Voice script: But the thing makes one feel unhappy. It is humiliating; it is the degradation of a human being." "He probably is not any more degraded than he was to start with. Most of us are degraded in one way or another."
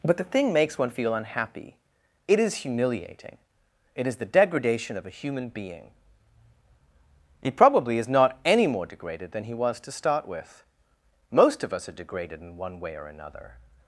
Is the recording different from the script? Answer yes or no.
no